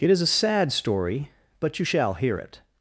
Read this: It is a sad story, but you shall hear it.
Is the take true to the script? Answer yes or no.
yes